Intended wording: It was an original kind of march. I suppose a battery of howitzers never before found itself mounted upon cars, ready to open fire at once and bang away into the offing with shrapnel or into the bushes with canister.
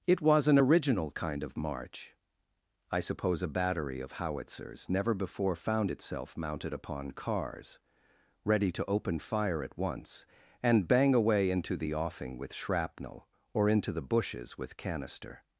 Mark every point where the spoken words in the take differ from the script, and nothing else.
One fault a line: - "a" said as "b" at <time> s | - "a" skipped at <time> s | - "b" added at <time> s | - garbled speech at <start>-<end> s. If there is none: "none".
none